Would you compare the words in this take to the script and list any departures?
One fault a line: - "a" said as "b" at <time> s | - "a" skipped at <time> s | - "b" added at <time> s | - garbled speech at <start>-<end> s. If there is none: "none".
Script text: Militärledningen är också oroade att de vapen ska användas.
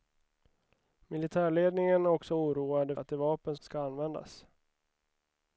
none